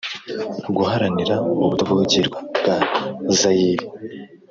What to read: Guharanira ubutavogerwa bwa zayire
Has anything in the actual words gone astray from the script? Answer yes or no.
no